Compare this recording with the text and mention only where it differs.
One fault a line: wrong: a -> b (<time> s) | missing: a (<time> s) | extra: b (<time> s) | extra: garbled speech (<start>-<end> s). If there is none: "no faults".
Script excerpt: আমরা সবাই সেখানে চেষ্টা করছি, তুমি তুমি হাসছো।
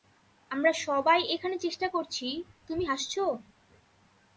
wrong: সেখানে -> এখানে (1.4 s)
missing: তুমি (2.8 s)